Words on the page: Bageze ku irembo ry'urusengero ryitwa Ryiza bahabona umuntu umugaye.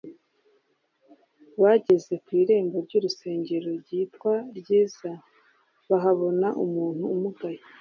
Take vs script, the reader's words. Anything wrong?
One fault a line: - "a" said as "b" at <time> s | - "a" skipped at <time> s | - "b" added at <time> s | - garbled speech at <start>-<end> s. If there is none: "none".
none